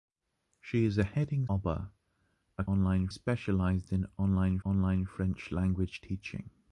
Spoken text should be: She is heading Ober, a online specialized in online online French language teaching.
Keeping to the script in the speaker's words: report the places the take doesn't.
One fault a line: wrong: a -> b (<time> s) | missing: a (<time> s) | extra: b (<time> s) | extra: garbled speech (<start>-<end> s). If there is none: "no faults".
no faults